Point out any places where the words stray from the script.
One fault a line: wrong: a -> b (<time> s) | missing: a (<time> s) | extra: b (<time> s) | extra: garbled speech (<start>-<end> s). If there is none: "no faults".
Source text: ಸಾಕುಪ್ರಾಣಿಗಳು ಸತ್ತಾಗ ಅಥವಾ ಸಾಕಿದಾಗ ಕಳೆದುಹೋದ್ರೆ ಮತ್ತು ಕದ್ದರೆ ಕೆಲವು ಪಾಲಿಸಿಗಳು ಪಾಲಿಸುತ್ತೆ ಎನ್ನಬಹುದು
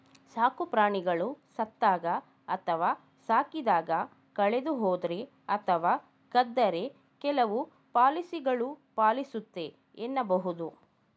wrong: ಮತ್ತು -> ಅಥವಾ (5.6 s)